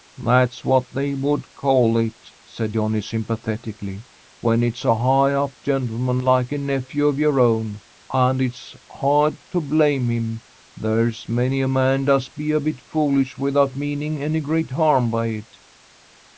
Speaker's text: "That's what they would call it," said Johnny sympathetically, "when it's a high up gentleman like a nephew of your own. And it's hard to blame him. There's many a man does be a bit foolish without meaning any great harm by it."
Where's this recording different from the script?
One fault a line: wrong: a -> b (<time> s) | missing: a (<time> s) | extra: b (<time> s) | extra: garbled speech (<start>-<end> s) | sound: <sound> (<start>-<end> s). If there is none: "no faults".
no faults